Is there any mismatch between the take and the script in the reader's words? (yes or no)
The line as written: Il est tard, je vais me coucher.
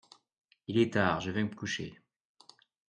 no